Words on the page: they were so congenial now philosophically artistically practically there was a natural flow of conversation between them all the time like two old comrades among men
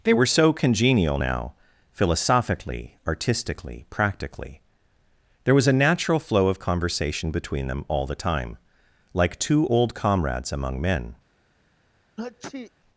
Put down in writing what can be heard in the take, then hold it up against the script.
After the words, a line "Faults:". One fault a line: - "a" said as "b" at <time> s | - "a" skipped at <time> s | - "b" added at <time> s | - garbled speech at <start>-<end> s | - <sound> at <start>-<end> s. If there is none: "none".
they were so congenial now philosophically artistically practically there was a natural flow of conversation between them all the time like two old comrades among men
Faults:
- sneeze at 12.2-12.7 s